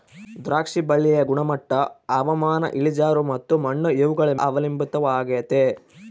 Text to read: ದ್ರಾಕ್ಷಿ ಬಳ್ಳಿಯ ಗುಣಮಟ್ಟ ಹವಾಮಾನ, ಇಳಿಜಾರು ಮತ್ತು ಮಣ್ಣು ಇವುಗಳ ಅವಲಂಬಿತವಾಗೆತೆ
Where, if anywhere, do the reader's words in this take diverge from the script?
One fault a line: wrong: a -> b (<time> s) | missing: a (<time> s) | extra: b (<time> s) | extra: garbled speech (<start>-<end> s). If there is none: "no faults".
no faults